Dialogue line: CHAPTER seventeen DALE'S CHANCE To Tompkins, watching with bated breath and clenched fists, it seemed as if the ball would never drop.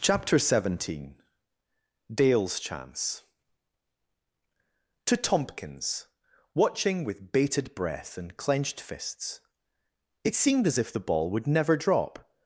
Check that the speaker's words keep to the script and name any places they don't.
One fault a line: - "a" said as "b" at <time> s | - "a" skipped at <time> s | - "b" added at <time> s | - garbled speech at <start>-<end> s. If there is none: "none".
none